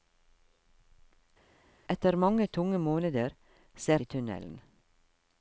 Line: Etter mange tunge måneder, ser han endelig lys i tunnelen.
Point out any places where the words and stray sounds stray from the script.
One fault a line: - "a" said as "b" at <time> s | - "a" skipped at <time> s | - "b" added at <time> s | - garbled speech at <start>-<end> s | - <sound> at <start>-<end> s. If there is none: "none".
- "han endelig lys" skipped at 4.0 s